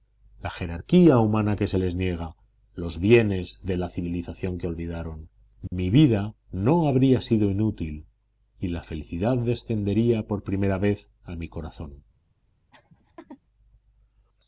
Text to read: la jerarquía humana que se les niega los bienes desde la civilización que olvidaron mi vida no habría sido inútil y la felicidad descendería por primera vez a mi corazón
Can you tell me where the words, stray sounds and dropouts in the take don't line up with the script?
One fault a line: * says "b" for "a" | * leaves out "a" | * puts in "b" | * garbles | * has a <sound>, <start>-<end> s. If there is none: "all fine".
* says "de" for "desde"
* has a dropout, 5.7-5.7 s
* has a laugh, 12.7-13.4 s